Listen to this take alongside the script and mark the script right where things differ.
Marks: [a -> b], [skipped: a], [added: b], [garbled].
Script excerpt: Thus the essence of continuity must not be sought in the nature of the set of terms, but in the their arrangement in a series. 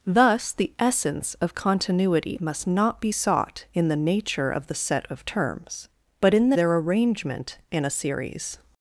Thus the essence of continuity must not be sought in the nature of the set of terms, but in the their arrangement in a series.